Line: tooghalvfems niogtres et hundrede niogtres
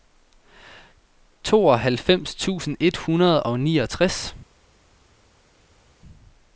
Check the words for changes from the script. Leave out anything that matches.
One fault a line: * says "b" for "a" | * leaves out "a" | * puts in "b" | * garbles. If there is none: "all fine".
* says "tusind" for "niogtres"
* puts in "og"